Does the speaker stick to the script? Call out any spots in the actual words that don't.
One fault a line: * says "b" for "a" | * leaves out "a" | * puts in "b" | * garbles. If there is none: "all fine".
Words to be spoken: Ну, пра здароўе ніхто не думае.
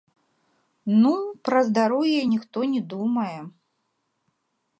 all fine